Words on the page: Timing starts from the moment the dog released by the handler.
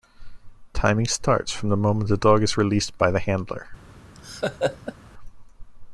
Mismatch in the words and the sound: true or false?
true